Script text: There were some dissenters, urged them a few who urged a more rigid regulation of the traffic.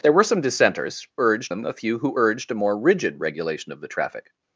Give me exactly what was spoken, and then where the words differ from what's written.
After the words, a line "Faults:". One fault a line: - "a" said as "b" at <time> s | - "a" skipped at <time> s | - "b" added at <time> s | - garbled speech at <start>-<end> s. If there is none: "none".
There were some dissenters, urged them a few who urged a more rigid regulation of the traffic.
Faults:
none